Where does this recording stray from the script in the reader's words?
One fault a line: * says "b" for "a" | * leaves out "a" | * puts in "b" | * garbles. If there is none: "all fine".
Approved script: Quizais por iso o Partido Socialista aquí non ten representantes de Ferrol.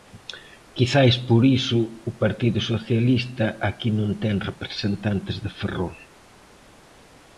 all fine